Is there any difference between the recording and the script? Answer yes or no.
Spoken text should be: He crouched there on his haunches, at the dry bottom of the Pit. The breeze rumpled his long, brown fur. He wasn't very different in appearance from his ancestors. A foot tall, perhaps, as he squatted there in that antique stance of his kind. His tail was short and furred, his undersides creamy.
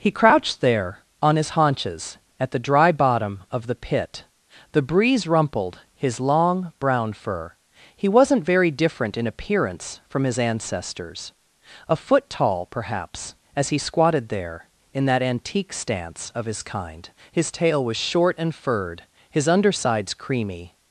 no